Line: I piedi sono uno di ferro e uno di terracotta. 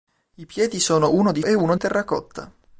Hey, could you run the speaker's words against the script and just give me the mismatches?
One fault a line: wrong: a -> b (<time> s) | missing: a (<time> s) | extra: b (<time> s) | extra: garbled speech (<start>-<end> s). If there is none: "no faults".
missing: ferro (1.4 s)
missing: di (1.7 s)